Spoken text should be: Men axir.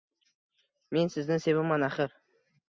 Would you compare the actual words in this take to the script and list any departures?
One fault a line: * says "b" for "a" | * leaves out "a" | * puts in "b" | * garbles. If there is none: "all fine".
* puts in "sizni sevaman"